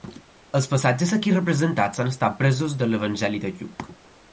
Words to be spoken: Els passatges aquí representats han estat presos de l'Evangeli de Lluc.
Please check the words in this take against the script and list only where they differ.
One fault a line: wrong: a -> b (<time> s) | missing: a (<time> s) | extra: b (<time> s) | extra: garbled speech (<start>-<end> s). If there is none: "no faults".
no faults